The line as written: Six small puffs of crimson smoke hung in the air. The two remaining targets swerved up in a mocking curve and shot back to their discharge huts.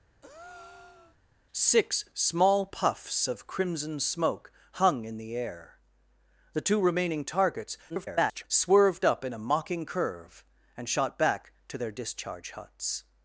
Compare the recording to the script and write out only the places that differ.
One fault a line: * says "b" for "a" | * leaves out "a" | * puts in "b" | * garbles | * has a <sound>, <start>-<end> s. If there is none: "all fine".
* has a breath, 0.2-1.2 s
* garbles